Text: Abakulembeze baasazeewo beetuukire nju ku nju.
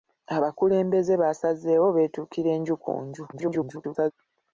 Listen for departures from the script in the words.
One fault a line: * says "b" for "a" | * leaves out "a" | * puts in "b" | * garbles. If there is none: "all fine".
* garbles